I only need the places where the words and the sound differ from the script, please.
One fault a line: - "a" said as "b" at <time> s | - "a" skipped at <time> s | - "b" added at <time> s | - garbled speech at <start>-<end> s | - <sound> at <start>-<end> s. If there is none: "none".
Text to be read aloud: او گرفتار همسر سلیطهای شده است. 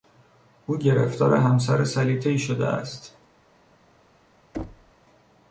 - thud at 4.5-4.9 s